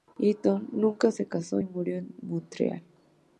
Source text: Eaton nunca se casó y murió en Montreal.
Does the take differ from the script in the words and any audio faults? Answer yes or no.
no